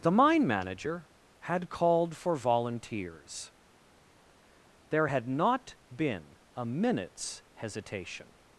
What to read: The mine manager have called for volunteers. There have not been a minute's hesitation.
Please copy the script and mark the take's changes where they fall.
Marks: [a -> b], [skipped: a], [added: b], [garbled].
The mine manager [have -> had] called for volunteers. There [have -> had] not been a minute's hesitation.